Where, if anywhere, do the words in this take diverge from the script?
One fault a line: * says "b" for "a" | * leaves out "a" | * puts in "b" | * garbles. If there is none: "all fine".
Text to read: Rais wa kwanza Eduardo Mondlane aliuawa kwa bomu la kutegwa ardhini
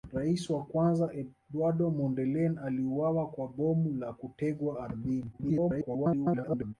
* garbles